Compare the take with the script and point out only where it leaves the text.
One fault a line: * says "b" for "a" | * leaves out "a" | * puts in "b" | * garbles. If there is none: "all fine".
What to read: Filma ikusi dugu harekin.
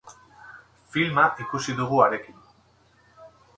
all fine